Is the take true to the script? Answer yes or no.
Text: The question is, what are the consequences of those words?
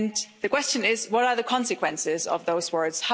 yes